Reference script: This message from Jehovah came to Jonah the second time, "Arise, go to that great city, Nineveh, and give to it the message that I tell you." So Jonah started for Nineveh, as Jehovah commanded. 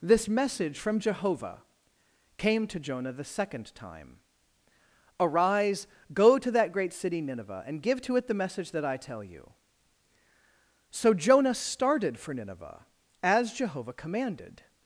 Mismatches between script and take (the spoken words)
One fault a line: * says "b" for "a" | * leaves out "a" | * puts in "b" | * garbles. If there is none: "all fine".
all fine